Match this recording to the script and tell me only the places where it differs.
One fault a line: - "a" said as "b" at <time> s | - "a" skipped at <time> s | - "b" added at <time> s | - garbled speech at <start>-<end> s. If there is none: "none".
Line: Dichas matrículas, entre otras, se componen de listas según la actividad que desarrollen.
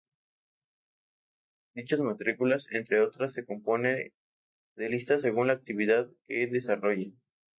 none